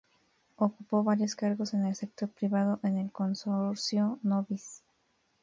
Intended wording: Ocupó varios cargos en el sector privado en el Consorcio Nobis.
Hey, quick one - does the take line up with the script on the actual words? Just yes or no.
yes